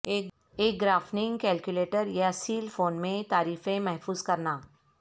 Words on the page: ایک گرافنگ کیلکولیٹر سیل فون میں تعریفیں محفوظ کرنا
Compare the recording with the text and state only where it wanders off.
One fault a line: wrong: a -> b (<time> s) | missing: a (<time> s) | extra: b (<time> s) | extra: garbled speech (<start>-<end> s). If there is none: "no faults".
extra: یا (2.1 s)